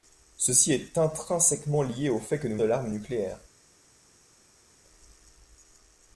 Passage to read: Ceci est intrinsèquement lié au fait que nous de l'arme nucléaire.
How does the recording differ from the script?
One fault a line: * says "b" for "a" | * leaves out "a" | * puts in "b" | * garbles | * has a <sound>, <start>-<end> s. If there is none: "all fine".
all fine